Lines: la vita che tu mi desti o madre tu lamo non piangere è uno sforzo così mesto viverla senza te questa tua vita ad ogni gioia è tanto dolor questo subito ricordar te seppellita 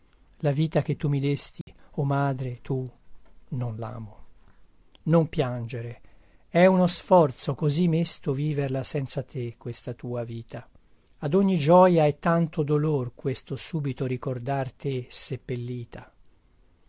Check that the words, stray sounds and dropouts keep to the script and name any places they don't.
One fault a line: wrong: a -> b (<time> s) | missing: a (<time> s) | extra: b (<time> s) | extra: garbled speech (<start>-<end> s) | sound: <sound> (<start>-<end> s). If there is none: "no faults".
sound: dropout (1.6-1.7 s)
extra: non (3.5 s)